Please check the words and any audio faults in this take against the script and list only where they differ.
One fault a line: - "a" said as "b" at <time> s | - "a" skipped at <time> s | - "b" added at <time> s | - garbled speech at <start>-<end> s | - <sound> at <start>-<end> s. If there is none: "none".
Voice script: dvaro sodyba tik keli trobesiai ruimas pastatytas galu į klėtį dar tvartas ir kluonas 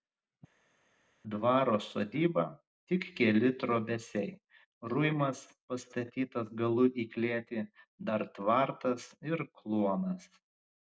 none